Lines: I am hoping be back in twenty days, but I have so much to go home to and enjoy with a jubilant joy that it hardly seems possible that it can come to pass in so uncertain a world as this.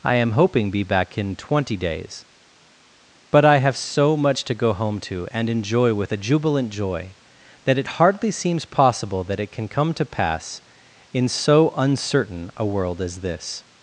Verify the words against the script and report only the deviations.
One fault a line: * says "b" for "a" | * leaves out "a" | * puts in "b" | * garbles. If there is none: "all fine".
all fine